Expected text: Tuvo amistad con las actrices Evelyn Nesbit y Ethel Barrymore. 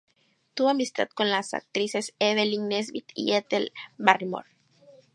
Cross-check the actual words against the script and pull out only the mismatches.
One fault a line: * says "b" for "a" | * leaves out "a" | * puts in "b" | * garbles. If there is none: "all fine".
all fine